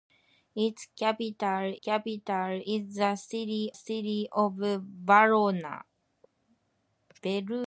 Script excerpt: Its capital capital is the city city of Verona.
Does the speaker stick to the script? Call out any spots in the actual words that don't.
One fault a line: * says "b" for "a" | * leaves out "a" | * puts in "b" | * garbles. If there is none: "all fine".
all fine